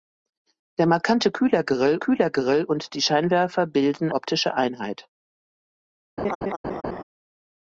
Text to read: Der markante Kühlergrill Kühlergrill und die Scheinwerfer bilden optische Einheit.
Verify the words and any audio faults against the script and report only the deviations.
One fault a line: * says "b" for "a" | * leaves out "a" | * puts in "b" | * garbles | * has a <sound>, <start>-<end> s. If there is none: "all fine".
* has a laugh, 6.2-7.0 s